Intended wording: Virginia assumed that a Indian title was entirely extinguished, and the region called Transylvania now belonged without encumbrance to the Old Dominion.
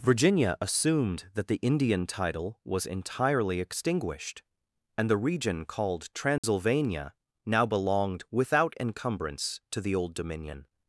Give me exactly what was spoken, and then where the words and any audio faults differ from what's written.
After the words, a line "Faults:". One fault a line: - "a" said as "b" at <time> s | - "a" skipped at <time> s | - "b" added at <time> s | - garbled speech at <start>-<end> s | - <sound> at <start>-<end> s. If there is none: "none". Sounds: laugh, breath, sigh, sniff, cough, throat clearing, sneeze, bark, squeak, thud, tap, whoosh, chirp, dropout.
Virginia assumed that the Indian title was entirely extinguished, and the region called Transylvania now belonged without encumbrance to the Old Dominion.
Faults:
- "a" said as "the" at 1.5 s
- dropout at 6.4-6.4 s